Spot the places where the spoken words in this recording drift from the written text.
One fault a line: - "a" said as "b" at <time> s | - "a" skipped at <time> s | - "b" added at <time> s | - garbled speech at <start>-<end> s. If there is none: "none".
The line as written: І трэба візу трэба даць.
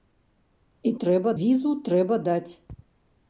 none